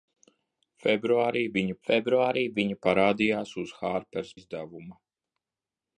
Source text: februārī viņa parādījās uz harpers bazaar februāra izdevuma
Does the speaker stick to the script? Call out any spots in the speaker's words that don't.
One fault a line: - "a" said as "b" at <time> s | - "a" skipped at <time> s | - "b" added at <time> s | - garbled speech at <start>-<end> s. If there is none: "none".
- "februārī viņa" added at 1.9 s
- "bazaar februāra" skipped at 4.3 s